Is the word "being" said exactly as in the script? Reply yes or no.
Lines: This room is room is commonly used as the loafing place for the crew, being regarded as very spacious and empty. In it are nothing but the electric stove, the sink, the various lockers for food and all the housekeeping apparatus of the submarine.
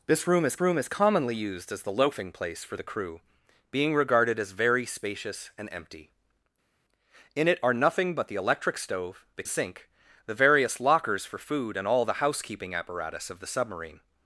yes